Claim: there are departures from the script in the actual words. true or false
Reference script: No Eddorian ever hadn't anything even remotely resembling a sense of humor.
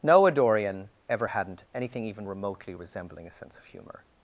false